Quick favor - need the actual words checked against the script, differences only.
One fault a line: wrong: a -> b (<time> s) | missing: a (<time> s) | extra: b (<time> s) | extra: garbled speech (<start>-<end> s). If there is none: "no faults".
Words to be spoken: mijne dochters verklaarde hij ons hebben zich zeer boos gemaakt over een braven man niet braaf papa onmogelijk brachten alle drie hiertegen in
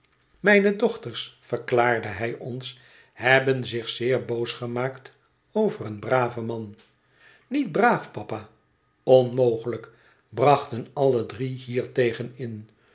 no faults